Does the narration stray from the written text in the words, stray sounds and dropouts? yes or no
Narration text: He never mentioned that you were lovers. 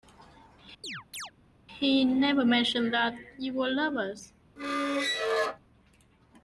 yes